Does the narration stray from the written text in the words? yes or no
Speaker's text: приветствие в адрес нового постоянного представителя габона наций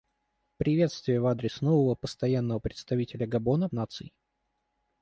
no